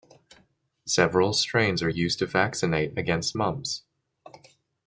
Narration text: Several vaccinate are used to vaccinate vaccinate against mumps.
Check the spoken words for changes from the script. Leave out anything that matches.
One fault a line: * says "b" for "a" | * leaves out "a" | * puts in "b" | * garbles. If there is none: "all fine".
* says "strains" for "vaccinate"
* leaves out "vaccinate"